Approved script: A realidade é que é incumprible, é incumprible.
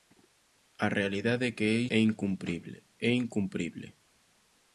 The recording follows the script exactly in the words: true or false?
true